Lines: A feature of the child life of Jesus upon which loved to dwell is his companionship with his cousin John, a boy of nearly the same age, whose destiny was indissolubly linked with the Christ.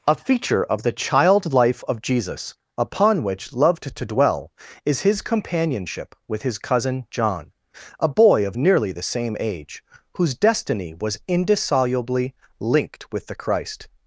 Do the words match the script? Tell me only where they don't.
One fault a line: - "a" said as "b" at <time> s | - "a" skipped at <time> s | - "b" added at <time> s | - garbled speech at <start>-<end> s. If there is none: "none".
none